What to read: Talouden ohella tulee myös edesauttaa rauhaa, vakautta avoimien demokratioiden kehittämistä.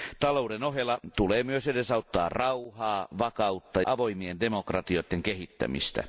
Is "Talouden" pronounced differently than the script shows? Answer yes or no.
no